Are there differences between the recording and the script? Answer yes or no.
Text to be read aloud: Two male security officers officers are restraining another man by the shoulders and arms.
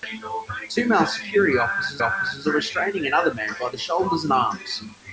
no